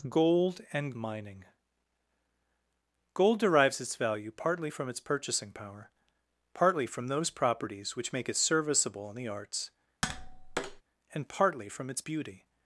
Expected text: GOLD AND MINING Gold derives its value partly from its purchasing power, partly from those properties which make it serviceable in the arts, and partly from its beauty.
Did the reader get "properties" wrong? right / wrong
right